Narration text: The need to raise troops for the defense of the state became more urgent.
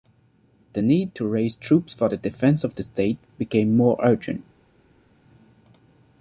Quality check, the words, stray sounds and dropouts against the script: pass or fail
pass